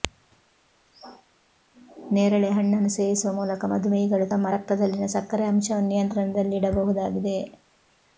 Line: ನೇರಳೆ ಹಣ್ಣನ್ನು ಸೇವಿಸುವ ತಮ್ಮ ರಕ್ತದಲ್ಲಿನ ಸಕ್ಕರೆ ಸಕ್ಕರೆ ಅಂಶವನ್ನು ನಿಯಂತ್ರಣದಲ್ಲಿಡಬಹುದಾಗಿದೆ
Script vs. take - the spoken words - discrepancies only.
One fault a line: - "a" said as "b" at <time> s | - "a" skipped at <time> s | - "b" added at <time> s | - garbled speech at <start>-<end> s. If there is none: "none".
- "ಮೂಲಕ ಮಧುಮೇಹಿಗಳು" added at 3.3 s
- "ಸಕ್ಕರೆ" skipped at 5.5 s